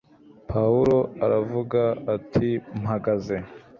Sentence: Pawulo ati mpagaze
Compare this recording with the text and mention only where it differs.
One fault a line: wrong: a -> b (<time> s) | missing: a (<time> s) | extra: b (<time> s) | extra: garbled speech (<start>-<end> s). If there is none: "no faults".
extra: aravuga (1.3 s)